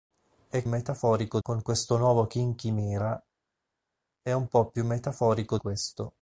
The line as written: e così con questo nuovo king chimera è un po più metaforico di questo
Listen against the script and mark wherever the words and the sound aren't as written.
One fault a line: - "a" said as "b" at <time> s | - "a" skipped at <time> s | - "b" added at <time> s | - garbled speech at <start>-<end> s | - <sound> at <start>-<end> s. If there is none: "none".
- "così" said as "metaforico" at 0.7 s
- "di" skipped at 5.6 s